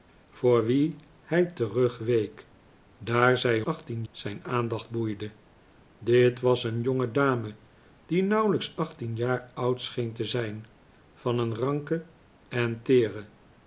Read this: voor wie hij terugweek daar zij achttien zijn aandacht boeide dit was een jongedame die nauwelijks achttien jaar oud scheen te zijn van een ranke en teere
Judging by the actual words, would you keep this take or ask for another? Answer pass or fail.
pass